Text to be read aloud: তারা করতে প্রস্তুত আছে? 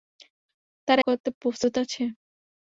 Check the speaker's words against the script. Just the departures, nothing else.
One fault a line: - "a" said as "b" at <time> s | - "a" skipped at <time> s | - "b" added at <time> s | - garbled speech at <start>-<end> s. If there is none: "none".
none